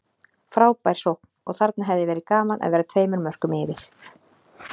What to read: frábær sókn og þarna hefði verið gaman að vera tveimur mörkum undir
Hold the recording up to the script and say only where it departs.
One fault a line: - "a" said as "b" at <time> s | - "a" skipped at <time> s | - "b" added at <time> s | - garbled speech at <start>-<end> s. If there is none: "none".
- "undir" said as "yfir" at 3.6 s